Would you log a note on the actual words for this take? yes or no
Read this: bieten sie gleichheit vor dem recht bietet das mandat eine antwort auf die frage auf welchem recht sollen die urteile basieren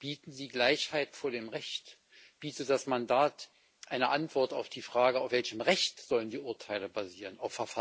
no